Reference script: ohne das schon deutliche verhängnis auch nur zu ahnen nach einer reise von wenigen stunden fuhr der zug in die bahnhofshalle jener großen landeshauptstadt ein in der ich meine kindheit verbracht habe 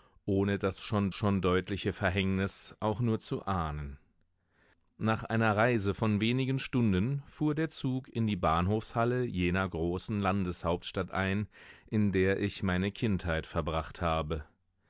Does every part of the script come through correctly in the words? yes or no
no